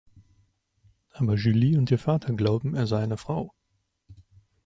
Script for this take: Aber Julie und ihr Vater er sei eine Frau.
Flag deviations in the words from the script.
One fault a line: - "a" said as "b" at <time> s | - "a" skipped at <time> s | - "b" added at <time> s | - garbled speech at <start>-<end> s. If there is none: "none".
- "glauben" added at 2.3 s